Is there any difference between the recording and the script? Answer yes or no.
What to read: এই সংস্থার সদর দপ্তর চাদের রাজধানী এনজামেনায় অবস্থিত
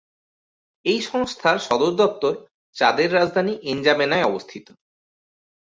no